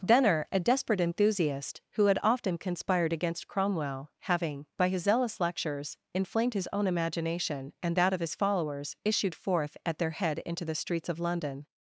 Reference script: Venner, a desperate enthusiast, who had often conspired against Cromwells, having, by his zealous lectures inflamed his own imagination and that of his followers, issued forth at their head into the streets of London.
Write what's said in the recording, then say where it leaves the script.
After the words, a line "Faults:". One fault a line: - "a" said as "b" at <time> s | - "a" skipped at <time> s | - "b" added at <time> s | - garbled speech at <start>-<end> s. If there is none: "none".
Venner, a desperate enthusiast, who had often conspired against Cromwell, having, by his zealous lectures inflamed his own imagination and that of his followers, issued forth at their head into the streets of London.
Faults:
- "Cromwells" said as "Cromwell" at 3.5 s